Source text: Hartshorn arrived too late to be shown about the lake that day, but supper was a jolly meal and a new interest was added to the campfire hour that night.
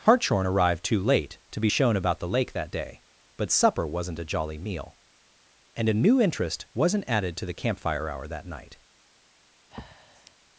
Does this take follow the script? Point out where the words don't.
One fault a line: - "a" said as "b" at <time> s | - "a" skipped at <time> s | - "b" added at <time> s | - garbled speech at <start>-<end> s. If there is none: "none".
- "was" said as "wasn't" at 3.9 s
- "was" said as "wasn't" at 6.7 s